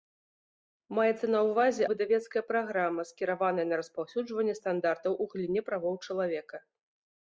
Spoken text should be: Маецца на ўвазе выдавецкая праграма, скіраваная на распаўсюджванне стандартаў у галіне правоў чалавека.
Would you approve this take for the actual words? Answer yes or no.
yes